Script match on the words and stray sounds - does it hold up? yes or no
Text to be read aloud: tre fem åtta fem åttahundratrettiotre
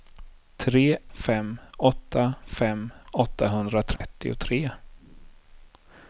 no